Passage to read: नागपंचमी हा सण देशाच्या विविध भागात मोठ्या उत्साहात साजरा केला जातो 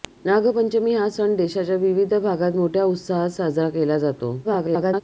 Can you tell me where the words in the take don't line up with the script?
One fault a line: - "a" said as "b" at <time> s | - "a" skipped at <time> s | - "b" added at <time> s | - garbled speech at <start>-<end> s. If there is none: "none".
- garbled speech at 4.4-5.0 s